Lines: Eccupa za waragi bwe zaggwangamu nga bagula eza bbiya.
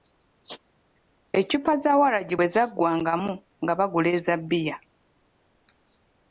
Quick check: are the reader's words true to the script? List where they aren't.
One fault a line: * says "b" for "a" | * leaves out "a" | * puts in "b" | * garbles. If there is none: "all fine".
all fine